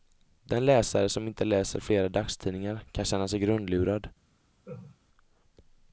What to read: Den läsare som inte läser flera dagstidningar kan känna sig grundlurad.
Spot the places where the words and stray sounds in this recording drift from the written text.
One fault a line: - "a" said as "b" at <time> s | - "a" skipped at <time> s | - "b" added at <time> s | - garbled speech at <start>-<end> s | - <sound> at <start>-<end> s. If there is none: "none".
- laugh at 4.6-5.0 s